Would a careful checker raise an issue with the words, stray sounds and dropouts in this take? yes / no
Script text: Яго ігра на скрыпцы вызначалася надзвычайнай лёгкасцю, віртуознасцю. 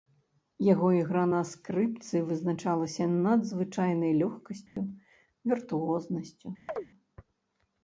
yes